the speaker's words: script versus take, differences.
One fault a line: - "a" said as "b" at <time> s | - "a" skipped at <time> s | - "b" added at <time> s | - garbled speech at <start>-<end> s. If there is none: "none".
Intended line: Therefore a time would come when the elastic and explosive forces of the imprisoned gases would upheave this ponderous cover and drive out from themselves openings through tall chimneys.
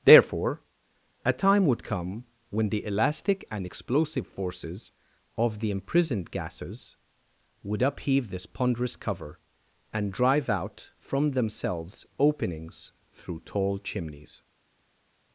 none